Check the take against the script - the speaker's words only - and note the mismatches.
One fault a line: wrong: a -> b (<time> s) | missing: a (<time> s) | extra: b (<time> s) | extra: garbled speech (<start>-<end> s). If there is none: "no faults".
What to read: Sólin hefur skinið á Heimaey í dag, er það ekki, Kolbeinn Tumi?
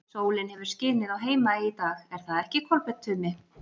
no faults